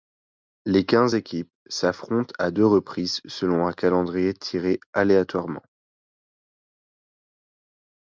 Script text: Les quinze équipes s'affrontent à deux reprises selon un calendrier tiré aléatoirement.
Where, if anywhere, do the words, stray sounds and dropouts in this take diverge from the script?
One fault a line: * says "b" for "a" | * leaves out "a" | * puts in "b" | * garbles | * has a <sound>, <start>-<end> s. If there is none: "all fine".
all fine